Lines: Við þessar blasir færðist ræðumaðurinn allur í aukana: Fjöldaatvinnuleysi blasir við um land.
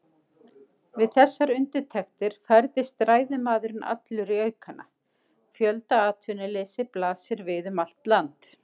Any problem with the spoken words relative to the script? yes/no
yes